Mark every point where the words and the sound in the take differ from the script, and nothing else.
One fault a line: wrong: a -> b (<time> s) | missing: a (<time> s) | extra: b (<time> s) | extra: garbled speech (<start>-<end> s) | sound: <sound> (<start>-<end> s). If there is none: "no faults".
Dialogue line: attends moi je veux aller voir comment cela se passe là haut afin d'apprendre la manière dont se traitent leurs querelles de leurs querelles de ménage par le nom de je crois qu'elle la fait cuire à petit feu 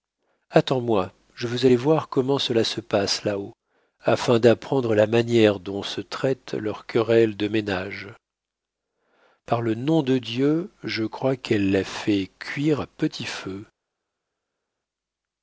missing: leurs querelles de (7.5 s)
extra: dieu (10.2 s)